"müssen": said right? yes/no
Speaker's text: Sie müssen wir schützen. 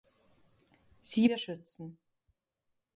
no